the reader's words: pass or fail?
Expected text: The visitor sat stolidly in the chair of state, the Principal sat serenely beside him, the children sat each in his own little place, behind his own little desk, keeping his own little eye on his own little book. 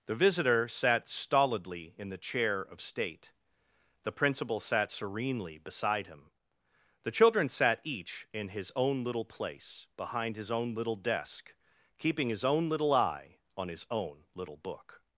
pass